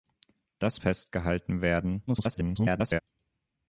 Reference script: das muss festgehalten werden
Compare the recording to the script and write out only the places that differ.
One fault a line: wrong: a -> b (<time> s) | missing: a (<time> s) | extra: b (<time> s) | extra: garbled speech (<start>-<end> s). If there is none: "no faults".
missing: muss (0.8 s)
extra: garbled speech (2.1-3.0 s)